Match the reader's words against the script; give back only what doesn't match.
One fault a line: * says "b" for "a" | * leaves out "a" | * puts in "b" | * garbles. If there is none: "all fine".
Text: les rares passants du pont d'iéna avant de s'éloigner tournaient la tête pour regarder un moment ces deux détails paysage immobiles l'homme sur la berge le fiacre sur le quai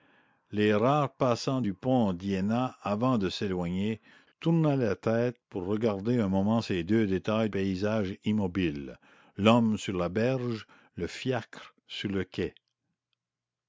all fine